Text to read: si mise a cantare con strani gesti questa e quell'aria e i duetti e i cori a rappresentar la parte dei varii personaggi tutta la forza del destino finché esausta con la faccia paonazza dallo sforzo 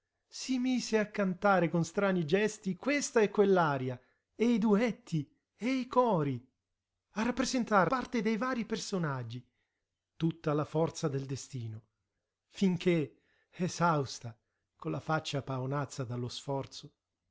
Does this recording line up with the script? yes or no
no